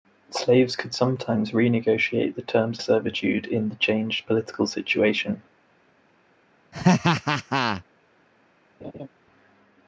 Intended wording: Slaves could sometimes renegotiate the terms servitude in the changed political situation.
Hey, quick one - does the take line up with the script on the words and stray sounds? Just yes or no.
no